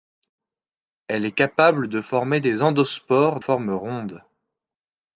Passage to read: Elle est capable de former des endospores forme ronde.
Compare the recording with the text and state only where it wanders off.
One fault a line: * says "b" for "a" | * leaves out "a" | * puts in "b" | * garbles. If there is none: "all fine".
all fine